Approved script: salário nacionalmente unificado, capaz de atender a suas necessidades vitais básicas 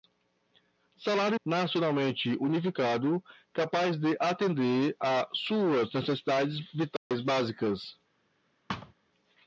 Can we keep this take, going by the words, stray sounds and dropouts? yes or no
no